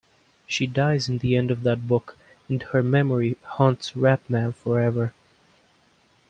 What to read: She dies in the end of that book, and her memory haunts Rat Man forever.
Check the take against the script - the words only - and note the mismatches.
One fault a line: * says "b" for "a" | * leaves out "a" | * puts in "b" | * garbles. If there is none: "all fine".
all fine